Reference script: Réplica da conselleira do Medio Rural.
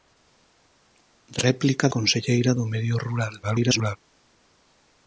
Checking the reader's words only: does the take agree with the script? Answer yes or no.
no